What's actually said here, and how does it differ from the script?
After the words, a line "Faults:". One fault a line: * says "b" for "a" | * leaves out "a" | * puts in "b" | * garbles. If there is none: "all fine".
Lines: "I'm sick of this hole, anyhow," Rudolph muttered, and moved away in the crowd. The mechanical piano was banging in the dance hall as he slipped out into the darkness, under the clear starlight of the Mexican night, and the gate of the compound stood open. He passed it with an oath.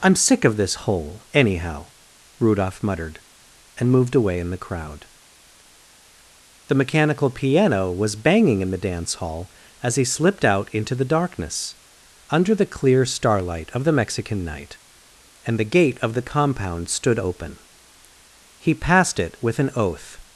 "I'm sick of this hole, anyhow," Rudolph muttered, and moved away in the crowd. The mechanical piano was banging in the dance hall as he slipped out into the darkness, under the clear starlight of the Mexican night, and the gate of the compound stood open. He passed it with an oath.
Faults:
all fine